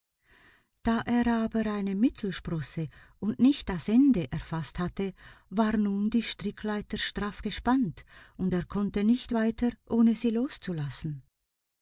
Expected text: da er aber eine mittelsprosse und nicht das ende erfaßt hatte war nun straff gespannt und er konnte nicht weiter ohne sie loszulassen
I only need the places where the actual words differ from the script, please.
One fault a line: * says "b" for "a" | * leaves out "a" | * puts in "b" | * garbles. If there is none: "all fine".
* puts in "die strickleiter"